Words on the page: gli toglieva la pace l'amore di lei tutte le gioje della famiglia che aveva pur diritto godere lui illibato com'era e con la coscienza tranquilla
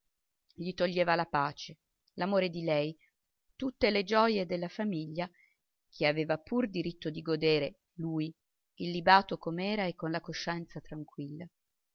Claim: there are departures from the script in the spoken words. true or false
true